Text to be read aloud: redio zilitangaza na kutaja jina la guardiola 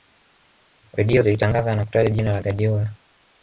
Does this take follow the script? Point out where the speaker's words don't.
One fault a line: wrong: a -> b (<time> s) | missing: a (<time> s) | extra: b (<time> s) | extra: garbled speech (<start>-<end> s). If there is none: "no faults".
no faults